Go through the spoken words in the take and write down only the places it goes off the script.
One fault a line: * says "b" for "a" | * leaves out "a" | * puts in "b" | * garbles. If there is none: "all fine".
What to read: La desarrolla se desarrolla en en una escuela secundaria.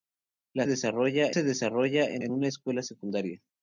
all fine